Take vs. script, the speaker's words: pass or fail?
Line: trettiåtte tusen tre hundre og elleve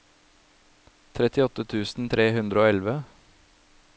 pass